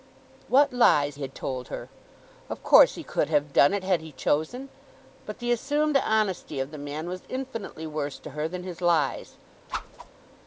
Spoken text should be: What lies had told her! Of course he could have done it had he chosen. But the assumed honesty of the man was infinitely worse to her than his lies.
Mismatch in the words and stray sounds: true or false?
true